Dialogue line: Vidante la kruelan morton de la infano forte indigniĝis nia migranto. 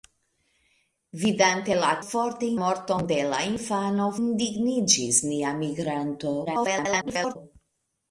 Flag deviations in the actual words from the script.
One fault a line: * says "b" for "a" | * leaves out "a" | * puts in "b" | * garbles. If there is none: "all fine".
* says "forte" for "kruelan"
* leaves out "forte"
* garbles